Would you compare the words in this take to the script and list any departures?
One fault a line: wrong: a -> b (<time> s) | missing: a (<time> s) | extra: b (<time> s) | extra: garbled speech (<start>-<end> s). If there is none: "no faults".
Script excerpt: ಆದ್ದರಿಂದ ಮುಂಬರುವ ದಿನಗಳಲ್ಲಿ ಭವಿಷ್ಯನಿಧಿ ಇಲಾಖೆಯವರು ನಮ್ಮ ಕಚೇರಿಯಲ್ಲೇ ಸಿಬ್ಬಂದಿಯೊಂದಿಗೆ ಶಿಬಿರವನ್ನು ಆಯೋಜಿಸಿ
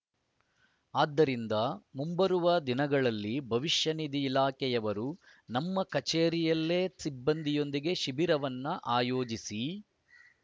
no faults